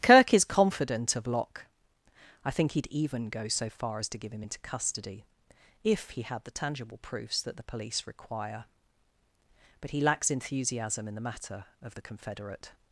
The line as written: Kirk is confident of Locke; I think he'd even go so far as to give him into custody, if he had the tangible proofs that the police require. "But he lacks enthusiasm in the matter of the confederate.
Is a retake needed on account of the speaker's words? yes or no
no